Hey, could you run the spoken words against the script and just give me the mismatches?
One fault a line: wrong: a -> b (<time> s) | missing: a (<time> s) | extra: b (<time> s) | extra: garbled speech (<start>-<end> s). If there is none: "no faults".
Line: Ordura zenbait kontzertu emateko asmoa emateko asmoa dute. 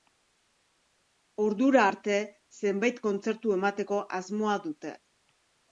extra: arte (1.9 s)
missing: emateko asmoa (4.6 s)